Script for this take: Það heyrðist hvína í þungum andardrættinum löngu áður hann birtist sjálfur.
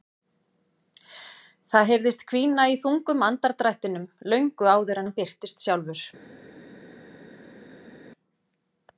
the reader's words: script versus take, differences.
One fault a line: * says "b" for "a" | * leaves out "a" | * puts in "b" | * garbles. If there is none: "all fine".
all fine